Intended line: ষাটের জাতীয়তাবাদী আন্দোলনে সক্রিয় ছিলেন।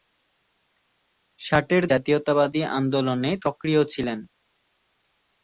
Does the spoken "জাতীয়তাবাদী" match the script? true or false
true